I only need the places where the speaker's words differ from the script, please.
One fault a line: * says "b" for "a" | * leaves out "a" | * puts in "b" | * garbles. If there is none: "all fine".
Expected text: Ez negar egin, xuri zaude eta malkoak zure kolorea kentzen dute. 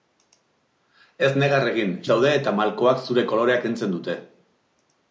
* leaves out "xuri"